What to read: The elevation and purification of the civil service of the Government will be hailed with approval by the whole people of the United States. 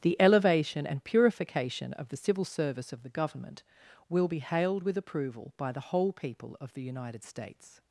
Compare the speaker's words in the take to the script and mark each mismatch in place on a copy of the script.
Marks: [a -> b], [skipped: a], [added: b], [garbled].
The elevation and purification of the civil service of the Government will be hailed with approval by the whole people of the United States.